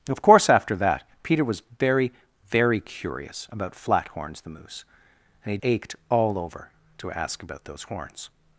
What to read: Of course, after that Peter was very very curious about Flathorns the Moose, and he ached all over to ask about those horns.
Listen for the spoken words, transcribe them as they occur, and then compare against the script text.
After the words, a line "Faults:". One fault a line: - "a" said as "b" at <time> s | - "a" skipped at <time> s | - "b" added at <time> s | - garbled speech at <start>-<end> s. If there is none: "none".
Of course, after that Peter was very very curious about Flathorns the Moose, and he ached all over to ask about those horns.
Faults:
none